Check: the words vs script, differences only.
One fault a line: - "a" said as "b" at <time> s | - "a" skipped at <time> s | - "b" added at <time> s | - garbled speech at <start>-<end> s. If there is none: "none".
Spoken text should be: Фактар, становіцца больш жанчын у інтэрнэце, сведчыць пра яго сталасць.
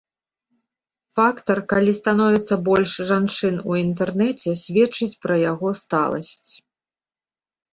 - "калі" added at 1.7 s